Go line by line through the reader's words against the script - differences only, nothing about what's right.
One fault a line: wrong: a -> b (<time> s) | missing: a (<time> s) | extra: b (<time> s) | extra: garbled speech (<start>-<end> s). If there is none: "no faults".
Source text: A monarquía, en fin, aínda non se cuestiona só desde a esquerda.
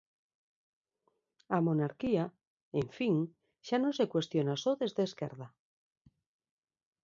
wrong: aínda -> xa (3.7 s)